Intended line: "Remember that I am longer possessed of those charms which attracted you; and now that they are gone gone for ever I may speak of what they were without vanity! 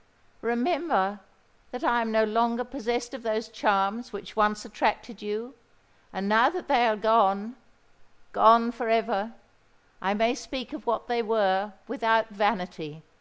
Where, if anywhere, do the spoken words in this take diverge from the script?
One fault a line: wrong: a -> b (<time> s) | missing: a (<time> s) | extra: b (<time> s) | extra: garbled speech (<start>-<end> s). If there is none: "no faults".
extra: no (2.1 s)
extra: once (4.3 s)